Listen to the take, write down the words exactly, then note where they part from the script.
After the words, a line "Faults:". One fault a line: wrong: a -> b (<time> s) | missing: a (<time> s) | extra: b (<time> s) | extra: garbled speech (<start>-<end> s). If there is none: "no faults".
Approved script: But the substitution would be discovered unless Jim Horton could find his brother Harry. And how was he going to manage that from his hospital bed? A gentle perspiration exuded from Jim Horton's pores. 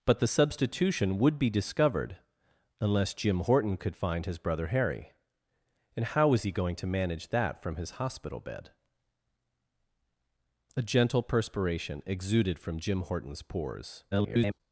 But the substitution would be discovered unless Jim Horton could find his brother Harry. And how was he going to manage that from his hospital bed? A gentle perspiration exuded from Jim Horton's pores. [garbled]
Faults:
extra: garbled speech (14.1-14.6 s)